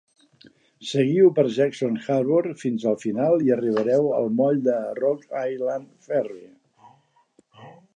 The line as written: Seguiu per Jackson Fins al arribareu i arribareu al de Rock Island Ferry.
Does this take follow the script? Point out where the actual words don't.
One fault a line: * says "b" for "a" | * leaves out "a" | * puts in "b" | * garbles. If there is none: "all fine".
* puts in "Harbor"
* says "final" for "arribareu"
* puts in "moll"